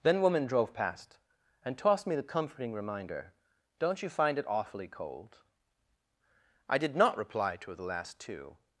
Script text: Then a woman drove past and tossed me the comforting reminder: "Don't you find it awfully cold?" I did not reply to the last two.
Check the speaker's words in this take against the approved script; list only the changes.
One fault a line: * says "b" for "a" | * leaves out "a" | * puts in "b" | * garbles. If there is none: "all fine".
* leaves out "a"